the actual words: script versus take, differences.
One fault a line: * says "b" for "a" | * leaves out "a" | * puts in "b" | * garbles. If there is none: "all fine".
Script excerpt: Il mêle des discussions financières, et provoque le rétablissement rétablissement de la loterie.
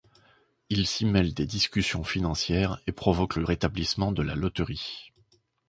* puts in "s'y"
* leaves out "rétablissement"